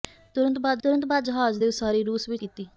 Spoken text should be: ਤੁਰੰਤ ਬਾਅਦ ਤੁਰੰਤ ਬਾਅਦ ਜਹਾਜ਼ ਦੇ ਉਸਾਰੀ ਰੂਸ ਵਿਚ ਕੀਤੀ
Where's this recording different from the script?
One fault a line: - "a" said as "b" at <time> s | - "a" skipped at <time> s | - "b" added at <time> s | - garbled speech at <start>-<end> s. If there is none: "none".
none